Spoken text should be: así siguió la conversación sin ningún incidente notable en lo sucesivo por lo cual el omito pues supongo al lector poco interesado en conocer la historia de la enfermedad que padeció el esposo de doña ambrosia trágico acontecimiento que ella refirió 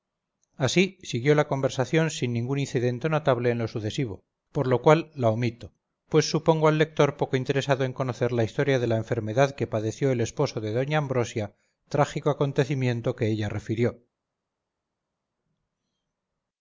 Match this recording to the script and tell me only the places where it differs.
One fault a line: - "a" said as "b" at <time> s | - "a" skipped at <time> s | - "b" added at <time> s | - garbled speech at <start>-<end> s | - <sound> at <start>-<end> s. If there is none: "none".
- "el" said as "la" at 5.1 s